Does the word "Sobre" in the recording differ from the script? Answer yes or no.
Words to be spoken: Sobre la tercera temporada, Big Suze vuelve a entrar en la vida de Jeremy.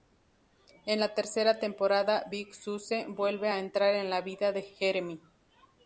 yes